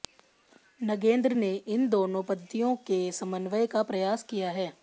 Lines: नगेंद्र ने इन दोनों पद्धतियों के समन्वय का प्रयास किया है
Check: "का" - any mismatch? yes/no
no